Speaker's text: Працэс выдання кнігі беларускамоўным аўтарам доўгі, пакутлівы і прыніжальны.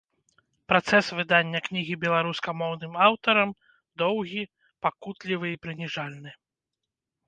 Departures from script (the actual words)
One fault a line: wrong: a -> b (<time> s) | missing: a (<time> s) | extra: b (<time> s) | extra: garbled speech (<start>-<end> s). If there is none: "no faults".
no faults